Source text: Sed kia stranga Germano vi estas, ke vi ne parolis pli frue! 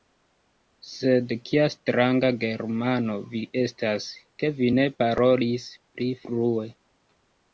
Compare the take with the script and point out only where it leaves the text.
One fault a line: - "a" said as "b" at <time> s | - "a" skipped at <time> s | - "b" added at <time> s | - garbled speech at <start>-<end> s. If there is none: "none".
none